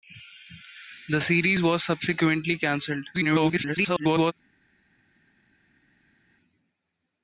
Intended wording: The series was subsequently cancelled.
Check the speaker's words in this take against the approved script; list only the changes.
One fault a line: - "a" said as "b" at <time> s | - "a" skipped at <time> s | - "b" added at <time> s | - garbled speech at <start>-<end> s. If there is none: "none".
- garbled speech at 3.1-4.3 s